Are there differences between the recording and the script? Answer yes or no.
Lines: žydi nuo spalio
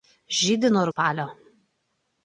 no